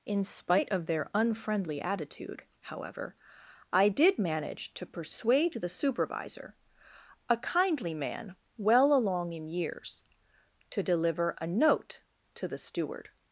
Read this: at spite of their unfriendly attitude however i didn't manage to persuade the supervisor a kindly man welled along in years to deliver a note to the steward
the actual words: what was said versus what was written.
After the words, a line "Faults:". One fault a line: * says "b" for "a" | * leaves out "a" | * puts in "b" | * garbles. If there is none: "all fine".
in spite of their unfriendly attitude however i did manage to persuade the supervisor a kindly man well along in years to deliver a note to the steward
Faults:
* says "in" for "at"
* says "did" for "didn't"
* says "well" for "welled"